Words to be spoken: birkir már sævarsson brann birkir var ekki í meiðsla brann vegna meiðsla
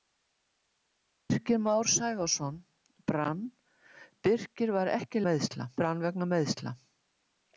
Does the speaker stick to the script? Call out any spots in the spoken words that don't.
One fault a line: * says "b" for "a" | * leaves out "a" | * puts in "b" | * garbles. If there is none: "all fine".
all fine